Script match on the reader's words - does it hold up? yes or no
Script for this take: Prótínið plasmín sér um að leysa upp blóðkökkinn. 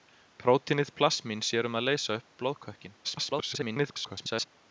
no